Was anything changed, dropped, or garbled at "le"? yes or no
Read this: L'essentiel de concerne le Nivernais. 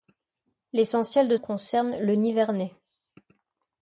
no